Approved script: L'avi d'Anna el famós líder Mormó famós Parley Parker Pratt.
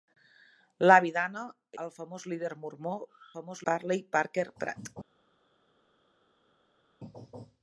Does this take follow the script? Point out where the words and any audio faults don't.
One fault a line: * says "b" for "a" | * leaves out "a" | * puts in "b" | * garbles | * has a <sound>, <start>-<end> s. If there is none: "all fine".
all fine